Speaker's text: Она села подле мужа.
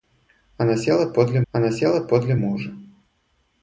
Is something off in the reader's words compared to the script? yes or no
yes